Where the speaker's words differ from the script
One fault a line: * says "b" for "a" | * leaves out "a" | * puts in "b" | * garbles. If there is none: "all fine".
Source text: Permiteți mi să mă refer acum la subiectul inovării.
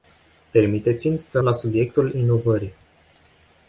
* leaves out "mă refer acum"